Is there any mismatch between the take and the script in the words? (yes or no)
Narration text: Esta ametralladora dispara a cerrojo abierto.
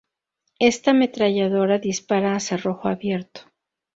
no